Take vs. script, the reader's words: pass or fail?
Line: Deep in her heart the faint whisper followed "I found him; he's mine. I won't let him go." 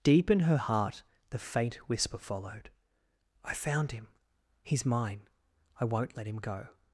pass